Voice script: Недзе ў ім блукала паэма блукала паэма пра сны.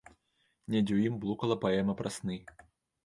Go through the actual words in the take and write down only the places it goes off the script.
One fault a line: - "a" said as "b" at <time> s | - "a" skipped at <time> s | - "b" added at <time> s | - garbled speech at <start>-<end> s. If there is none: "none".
- "блукала паэма" skipped at 1.9 s